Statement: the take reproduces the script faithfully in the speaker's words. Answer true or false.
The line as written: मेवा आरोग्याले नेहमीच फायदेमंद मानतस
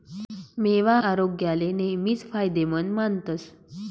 true